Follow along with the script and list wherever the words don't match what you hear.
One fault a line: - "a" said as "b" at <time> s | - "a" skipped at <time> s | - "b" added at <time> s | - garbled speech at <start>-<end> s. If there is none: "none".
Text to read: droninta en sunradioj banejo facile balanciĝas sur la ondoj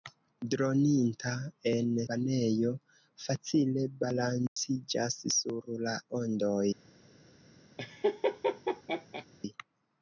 - "sunradioj" skipped at 1.9 s